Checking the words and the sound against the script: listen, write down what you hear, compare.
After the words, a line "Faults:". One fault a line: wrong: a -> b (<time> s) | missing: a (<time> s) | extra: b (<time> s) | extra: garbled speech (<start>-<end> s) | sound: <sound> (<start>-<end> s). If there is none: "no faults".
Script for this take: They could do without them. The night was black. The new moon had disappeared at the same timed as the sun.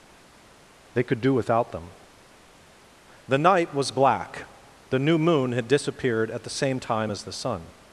They could do without them. The night was black. The new moon had disappeared at the same time as the sun.
Faults:
wrong: timed -> time (6.8 s)